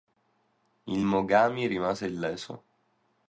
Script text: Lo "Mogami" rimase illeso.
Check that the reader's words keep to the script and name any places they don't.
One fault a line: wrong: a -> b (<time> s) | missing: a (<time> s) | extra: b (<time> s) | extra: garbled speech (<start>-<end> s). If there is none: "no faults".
wrong: Lo -> Il (0.9 s)